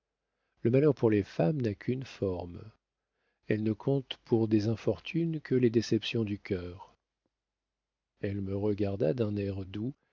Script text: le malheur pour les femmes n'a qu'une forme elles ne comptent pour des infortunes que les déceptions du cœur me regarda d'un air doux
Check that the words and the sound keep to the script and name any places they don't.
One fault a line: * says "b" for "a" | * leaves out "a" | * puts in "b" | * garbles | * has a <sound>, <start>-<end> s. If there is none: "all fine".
* puts in "elle"